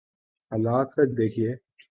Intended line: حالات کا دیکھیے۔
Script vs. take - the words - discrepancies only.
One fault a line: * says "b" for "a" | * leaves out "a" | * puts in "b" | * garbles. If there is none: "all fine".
all fine